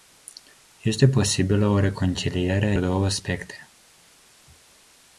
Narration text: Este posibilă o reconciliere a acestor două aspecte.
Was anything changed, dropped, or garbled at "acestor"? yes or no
yes